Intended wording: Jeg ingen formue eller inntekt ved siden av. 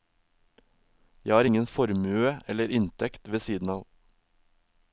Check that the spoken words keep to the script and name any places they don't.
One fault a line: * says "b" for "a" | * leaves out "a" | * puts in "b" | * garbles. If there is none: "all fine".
* puts in "har"